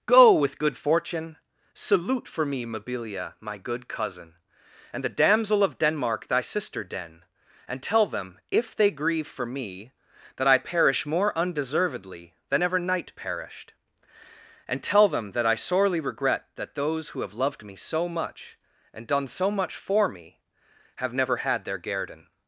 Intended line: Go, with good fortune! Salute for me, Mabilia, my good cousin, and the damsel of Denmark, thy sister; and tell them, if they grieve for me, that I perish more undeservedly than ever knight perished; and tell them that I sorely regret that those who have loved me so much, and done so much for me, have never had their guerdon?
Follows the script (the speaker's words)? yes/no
no